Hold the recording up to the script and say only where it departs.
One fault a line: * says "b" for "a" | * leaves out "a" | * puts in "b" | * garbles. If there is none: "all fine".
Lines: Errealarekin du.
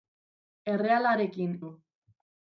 all fine